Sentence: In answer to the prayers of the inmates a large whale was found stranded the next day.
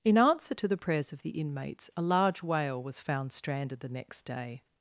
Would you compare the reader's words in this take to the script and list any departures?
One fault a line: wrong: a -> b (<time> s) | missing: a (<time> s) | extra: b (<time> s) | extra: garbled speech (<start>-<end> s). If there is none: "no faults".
no faults